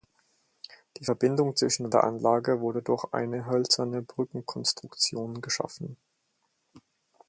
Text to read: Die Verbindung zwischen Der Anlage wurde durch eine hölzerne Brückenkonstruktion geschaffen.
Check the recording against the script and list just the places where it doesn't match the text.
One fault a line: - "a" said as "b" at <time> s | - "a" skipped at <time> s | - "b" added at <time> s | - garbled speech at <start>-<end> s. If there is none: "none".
none